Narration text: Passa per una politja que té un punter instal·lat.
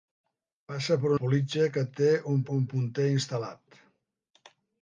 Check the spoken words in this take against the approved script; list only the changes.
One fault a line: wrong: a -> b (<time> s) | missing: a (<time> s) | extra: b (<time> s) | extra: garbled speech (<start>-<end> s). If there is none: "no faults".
missing: una (1.1 s)
extra: un (2.6 s)